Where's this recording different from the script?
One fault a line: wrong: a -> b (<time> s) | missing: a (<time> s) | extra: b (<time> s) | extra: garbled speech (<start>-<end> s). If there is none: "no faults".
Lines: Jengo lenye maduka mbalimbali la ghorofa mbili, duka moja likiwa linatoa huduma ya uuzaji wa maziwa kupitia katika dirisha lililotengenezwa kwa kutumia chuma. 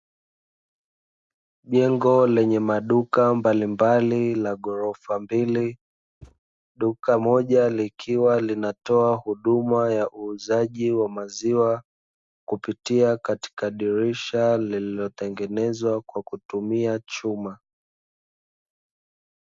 no faults